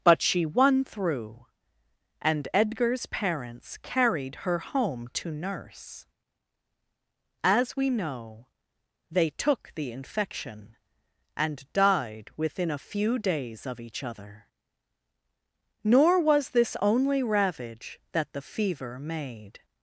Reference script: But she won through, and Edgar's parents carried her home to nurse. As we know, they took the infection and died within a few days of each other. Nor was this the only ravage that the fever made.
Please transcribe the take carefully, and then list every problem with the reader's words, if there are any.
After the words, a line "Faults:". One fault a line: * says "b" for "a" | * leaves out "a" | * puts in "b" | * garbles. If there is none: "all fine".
But she won through, and Edgar's parents carried her home to nurse. As we know, they took the infection and died within a few days of each other. Nor was this only ravage that the fever made.
Faults:
* leaves out "the"